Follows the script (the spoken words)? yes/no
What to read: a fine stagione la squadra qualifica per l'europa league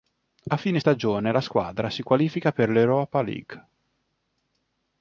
no